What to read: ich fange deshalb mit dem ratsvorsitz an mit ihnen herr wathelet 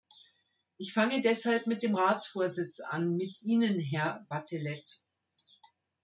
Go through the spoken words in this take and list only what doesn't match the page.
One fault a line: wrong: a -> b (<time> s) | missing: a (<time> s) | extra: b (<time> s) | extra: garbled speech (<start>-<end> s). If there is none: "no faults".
no faults